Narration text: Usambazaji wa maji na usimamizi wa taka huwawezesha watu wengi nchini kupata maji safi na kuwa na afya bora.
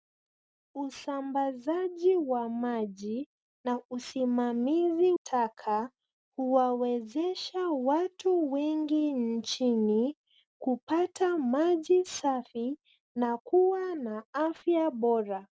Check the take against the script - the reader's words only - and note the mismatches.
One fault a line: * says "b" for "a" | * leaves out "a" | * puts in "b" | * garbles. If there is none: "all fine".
* leaves out "wa"